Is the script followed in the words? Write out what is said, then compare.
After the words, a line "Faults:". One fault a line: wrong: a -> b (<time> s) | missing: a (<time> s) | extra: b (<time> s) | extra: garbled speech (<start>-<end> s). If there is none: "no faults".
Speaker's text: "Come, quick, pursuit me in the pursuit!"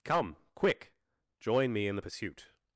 "Come, quick, join me in the pursuit!"
Faults:
wrong: pursuit -> join (1.4 s)